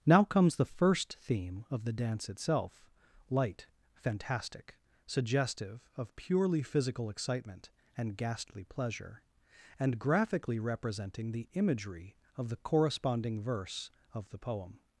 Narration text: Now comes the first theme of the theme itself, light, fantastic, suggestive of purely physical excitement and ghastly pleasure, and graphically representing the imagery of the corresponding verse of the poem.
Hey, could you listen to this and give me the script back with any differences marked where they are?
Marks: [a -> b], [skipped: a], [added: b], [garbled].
Now comes the first theme of the [theme -> dance] itself, light, fantastic, suggestive of purely physical excitement and ghastly pleasure, and graphically representing the imagery of the corresponding verse of the poem.